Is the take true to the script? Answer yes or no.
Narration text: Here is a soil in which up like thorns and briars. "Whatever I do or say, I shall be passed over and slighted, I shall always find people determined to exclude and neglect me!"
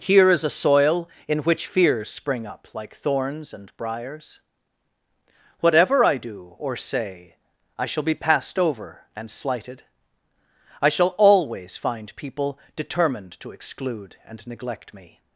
no